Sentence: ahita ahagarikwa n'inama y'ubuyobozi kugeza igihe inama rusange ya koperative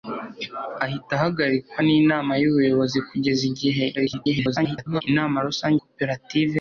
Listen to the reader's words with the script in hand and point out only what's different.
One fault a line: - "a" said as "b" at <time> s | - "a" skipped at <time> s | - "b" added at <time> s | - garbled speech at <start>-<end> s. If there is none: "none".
- garbled speech at 4.0-5.0 s
- "ya" skipped at 5.8 s